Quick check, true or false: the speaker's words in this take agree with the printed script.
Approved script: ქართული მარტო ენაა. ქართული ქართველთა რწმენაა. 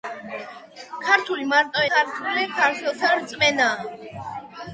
false